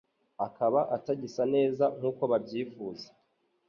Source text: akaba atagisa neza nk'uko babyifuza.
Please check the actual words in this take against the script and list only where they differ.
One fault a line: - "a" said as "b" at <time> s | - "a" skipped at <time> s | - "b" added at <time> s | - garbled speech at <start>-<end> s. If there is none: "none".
none